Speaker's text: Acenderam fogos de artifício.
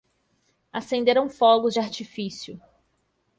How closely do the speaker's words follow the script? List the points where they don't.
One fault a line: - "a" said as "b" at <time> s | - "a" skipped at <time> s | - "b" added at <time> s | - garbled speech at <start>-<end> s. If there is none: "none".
none